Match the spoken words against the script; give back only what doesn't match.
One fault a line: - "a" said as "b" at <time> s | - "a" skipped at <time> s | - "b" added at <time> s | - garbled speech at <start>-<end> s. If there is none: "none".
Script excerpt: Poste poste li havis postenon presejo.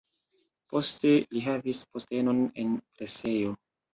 - "poste" skipped at 1.1 s
- "en" added at 2.6 s